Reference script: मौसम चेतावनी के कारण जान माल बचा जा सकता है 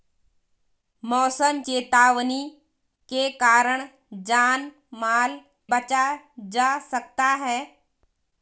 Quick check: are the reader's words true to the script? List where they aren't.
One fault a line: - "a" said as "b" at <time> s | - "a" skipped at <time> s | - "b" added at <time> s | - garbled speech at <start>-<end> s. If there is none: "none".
none